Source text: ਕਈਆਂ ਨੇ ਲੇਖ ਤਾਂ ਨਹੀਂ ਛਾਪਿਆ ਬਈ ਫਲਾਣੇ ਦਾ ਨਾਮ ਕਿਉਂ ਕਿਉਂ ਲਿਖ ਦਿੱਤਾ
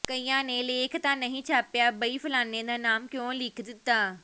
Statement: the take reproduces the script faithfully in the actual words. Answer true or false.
false